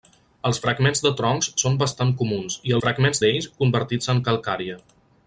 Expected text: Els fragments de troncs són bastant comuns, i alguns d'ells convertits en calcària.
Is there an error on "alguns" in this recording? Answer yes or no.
yes